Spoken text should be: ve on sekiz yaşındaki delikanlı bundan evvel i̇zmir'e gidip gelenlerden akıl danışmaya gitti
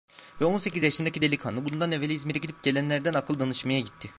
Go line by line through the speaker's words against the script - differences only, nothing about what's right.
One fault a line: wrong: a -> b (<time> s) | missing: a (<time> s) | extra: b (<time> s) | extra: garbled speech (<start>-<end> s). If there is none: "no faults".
no faults